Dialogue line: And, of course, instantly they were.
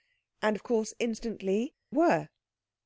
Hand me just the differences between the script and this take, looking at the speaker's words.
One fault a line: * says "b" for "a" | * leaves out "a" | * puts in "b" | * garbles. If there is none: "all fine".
* leaves out "they"